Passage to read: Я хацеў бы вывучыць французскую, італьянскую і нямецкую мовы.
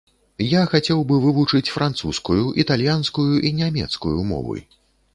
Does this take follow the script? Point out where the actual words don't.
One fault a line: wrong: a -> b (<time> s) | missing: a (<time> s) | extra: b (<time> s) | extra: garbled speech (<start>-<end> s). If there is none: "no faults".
no faults